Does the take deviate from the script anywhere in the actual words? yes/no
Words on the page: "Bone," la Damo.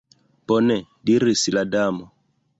yes